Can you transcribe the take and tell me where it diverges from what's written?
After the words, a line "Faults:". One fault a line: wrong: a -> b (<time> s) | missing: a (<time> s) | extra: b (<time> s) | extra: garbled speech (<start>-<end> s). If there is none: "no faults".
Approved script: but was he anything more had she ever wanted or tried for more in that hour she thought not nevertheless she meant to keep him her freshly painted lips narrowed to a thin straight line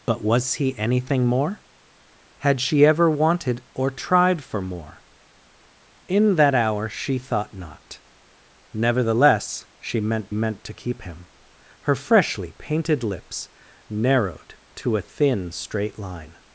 but was he anything more had she ever wanted or tried for more in that hour she thought not nevertheless she meant meant to keep him her freshly painted lips narrowed to a thin straight line
Faults:
extra: meant (10.3 s)